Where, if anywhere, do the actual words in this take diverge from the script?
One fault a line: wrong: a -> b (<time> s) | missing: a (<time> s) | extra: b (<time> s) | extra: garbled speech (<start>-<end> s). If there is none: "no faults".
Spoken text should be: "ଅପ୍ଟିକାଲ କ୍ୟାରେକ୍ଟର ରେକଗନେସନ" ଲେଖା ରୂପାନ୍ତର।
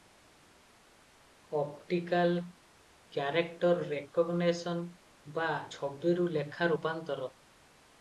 extra: ବା ଛବିରୁ (5.3 s)